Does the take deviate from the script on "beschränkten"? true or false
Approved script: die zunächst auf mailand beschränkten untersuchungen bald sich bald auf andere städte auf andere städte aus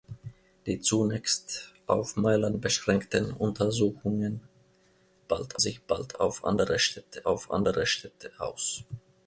false